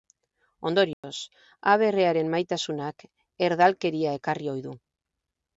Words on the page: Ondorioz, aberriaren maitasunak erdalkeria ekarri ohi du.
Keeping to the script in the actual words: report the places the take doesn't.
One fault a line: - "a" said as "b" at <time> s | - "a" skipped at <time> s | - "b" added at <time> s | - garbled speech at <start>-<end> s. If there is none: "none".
none